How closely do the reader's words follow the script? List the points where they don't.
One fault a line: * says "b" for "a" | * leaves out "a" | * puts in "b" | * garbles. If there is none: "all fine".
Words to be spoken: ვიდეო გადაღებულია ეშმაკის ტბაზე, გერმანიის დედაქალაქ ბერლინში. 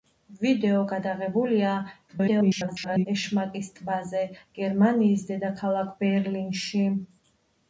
* garbles